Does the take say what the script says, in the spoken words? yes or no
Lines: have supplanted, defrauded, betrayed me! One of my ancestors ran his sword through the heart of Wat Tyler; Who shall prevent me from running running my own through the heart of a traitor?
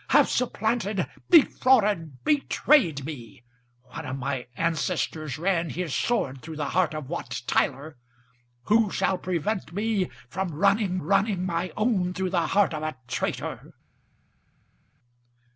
yes